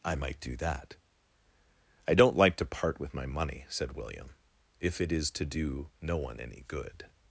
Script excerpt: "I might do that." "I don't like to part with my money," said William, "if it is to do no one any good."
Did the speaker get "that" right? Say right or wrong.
right